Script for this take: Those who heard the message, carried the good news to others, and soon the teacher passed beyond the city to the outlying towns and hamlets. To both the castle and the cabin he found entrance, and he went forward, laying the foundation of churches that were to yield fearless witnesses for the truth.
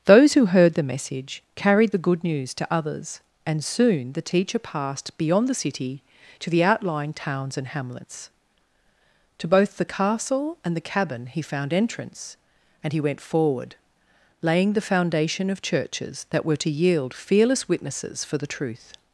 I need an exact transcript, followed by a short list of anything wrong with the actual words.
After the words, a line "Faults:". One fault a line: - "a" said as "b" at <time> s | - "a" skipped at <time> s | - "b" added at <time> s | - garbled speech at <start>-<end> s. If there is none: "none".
Those who heard the message, carried the good news to others, and soon the teacher passed beyond the city to the outlying towns and hamlets. To both the castle and the cabin he found entrance, and he went forward, laying the foundation of churches that were to yield fearless witnesses for the truth.
Faults:
none